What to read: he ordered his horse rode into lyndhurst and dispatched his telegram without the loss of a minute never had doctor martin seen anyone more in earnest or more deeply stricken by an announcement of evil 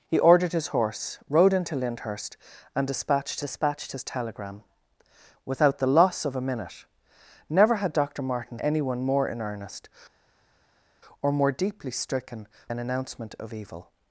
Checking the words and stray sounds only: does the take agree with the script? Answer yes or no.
no